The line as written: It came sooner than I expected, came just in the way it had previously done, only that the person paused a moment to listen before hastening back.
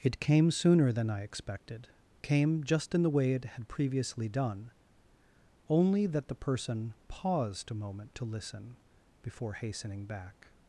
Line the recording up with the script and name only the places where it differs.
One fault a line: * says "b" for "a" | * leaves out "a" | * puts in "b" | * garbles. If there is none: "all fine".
all fine